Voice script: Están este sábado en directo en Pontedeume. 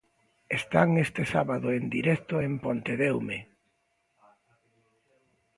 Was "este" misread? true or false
false